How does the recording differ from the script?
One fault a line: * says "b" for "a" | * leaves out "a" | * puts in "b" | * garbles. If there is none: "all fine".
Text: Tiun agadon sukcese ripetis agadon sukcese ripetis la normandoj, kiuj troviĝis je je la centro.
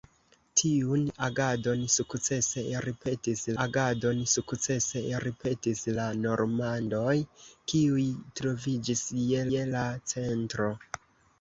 all fine